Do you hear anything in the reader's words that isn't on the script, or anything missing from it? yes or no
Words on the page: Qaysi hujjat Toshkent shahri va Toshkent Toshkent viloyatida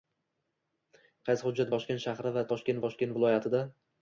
no